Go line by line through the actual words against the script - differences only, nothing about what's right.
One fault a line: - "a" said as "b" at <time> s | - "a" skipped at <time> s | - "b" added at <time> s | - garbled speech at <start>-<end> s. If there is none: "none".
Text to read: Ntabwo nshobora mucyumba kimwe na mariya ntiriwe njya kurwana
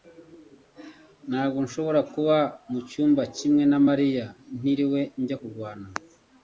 - "kuba" added at 2.1 s